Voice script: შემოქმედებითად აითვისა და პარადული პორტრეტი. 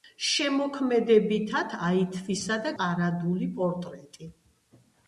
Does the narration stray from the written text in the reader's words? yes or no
no